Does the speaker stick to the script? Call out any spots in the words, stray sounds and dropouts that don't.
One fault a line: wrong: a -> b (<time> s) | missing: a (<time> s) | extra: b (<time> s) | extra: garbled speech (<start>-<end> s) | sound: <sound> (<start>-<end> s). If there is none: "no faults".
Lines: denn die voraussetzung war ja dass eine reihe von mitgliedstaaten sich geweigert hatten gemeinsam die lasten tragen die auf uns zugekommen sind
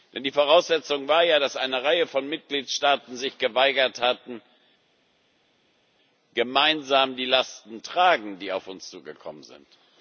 no faults